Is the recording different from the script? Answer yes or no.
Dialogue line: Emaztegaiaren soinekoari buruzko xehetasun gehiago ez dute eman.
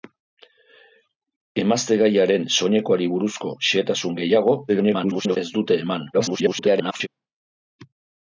yes